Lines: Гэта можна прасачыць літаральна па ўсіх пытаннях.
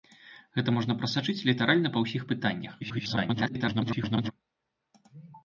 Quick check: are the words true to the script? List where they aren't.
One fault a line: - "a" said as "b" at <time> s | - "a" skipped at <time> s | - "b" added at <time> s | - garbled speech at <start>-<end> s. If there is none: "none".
- garbled speech at 2.8-4.3 s